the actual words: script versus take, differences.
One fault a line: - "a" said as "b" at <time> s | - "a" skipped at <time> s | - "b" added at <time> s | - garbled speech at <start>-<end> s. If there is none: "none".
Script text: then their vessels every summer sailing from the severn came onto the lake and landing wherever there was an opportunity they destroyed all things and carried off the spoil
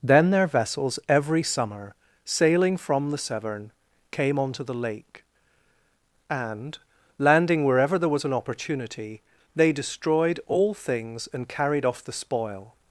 none